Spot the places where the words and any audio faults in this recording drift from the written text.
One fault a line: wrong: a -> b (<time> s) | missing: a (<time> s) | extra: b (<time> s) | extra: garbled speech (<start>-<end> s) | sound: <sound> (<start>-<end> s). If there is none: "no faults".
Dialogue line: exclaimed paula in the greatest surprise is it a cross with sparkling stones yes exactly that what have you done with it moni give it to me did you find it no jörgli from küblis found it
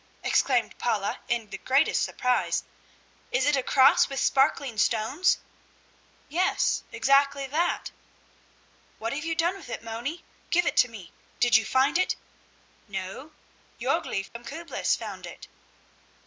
sound: dropout (14.3-14.4 s)